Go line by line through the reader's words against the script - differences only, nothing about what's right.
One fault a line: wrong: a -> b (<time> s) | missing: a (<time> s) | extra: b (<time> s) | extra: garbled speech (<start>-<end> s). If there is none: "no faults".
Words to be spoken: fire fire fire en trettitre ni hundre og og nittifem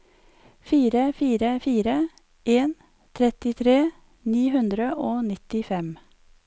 missing: og (5.2 s)